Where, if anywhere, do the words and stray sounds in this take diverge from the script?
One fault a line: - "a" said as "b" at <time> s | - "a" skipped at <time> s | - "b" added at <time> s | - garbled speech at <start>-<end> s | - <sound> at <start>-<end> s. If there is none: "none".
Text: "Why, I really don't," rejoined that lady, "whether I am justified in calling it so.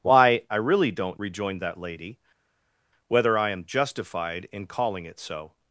none